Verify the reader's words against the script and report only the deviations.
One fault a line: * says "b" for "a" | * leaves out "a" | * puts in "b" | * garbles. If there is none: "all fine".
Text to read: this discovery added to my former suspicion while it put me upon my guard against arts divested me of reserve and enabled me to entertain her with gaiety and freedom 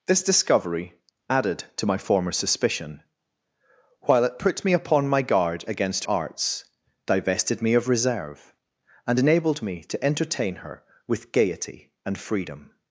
all fine